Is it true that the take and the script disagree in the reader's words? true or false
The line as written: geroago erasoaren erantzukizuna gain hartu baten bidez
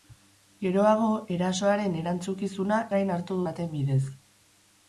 false